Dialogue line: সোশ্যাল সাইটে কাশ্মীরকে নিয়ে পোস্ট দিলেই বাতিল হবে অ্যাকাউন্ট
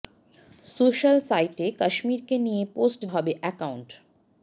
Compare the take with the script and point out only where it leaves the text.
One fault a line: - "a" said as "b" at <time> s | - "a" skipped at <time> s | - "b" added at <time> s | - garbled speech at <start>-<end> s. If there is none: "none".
- "দিলেই বাতিল" skipped at 3.0 s